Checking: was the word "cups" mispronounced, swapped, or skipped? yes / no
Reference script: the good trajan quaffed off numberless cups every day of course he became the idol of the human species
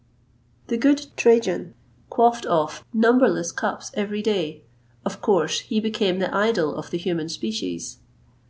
no